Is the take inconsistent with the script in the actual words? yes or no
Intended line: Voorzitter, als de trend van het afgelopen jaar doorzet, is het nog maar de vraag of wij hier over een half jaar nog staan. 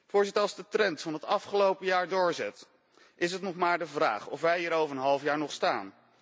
no